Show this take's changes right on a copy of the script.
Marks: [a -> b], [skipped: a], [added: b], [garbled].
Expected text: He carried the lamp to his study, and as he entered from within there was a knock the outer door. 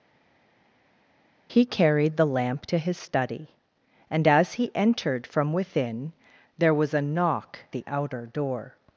He carried the lamp to his study, and as he entered from within there was a knock the outer door.